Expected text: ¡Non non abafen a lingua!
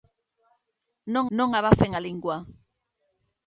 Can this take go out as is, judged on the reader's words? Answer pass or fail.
pass